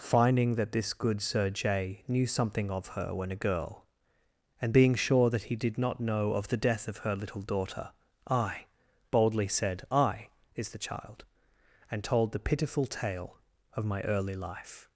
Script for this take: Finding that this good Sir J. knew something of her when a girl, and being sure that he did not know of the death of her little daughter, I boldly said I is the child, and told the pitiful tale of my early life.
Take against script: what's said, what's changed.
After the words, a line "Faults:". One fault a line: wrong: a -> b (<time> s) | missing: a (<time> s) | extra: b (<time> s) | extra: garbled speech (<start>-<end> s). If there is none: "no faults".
Finding that this good Sir J. knew something of her when a girl, and being sure that he did not know of the death of her little daughter, I boldly said I is the child, and told the pitiful tale of my early life.
Faults:
no faults